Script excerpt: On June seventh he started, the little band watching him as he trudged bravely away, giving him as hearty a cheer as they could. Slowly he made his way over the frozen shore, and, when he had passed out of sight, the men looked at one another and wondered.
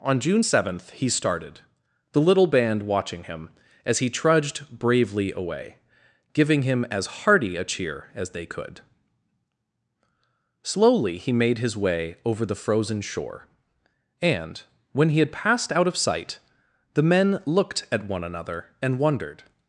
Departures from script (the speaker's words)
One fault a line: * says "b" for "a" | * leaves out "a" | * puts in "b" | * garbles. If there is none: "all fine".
all fine